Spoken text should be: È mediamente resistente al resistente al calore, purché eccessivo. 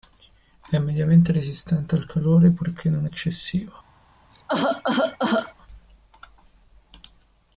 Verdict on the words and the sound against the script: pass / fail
fail